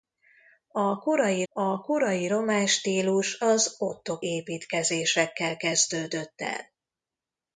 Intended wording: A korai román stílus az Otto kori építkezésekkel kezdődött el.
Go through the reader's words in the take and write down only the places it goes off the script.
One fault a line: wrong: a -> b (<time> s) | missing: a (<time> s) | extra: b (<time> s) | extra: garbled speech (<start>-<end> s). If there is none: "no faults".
extra: a korai (1.5 s)
missing: kori (4.2 s)